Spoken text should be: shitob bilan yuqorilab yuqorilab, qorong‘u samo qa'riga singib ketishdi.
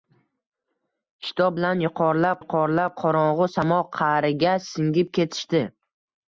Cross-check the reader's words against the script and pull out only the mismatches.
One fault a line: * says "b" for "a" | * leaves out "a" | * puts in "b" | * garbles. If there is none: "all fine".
all fine